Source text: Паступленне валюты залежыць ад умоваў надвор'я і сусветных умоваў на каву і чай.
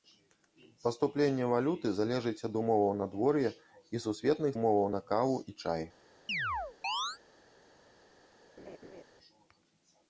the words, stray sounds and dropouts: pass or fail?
fail